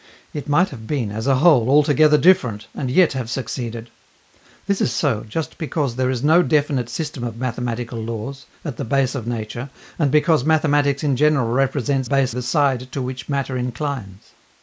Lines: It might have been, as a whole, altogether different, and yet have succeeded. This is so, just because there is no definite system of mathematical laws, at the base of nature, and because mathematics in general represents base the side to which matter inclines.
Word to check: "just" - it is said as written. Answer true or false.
true